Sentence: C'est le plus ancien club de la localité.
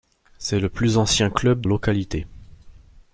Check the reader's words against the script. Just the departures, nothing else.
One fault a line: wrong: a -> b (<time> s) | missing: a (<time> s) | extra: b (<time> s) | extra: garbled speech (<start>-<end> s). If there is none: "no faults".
missing: de la (1.6 s)